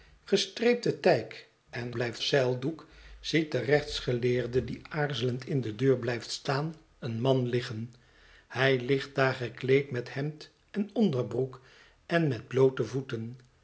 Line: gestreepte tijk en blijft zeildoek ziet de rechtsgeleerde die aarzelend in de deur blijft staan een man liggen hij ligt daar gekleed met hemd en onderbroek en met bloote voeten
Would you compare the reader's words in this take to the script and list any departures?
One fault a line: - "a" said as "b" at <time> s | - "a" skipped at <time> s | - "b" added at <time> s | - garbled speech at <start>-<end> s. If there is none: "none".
none